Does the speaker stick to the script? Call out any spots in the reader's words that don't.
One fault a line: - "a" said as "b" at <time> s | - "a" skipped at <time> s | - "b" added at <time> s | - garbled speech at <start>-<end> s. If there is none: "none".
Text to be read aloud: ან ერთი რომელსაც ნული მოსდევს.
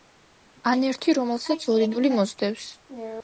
- "ორი" added at 1.8 s